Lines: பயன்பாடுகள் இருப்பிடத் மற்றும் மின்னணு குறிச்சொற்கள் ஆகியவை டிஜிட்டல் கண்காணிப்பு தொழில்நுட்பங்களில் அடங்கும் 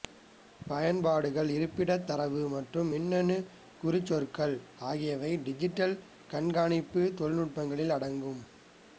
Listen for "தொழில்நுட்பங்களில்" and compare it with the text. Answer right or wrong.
right